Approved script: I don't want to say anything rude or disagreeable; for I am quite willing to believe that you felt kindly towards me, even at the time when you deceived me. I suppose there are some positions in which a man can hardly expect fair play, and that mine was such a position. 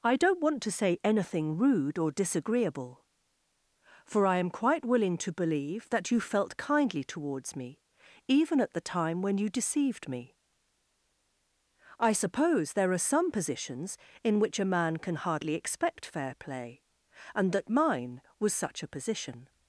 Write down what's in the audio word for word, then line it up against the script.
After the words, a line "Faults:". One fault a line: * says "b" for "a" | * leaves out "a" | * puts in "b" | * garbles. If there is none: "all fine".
I don't want to say anything rude or disagreeable; for I am quite willing to believe that you felt kindly towards me, even at the time when you deceived me. I suppose there are some positions in which a man can hardly expect fair play, and that mine was such a position.
Faults:
all fine